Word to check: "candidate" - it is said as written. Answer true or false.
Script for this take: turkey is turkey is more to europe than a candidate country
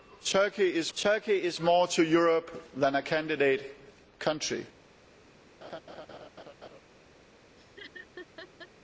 true